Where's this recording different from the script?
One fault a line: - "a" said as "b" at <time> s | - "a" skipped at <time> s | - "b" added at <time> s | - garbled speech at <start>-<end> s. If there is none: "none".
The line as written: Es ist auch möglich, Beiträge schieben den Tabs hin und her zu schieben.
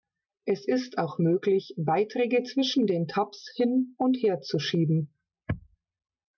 - "schieben" said as "zwischen" at 2.4 s